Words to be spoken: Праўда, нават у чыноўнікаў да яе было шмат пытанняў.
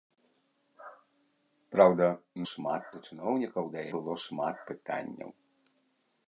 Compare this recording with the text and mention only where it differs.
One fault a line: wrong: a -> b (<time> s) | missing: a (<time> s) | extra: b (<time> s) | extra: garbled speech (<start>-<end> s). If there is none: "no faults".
wrong: нават -> шмат (2.5 s)
missing: яе (3.9 s)